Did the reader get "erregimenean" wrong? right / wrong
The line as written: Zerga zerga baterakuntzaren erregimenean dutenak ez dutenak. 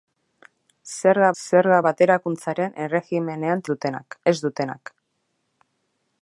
right